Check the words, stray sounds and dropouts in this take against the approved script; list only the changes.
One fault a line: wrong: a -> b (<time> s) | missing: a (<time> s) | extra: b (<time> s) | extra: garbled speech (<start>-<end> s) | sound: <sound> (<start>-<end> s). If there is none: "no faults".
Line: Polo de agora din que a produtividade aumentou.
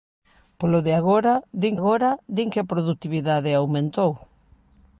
extra: agora din (1.8 s)